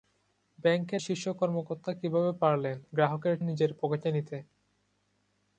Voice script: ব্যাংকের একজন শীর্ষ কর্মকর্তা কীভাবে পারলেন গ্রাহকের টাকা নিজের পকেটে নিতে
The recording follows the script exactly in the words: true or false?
false